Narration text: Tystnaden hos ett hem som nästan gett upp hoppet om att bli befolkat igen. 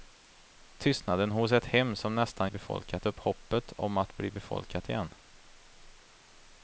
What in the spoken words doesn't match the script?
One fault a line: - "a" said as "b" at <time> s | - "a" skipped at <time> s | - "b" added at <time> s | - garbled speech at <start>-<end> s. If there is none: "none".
- "gett" said as "befolkat" at 2.5 s